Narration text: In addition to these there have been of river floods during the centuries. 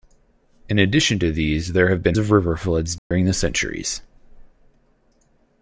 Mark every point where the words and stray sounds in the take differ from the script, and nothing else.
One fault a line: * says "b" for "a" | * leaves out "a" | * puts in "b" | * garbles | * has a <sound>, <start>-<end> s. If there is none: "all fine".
* has a dropout, 3.0-3.1 s